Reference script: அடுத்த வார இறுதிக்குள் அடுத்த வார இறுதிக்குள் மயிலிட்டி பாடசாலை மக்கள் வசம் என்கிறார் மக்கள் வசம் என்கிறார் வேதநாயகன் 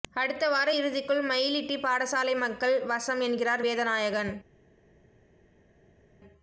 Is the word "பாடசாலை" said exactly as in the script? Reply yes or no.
yes